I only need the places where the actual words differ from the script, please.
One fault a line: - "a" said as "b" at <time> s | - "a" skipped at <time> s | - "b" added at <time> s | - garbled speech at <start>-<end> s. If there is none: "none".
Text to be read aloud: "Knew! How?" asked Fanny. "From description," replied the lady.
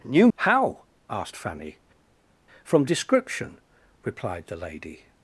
none